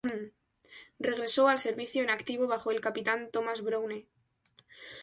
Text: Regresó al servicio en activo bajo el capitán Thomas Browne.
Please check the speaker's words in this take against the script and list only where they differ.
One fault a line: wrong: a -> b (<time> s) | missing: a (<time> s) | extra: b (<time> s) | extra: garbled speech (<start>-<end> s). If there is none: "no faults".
no faults